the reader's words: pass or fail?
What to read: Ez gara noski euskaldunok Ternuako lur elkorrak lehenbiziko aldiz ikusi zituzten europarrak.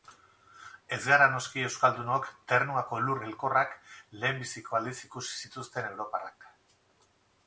pass